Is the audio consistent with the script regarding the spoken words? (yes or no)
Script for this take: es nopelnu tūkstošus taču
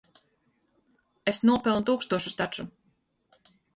yes